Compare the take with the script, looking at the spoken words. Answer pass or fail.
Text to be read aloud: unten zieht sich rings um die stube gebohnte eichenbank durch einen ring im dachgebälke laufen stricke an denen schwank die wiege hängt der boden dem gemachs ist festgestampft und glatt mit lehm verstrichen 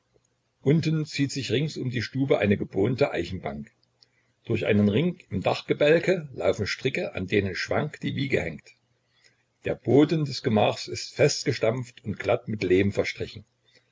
fail